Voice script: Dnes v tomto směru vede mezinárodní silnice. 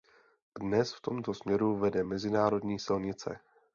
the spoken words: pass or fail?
pass